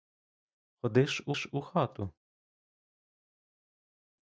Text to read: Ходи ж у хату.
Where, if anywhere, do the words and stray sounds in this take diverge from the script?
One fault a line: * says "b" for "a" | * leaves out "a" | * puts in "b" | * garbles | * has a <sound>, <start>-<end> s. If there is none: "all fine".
* puts in "ж у"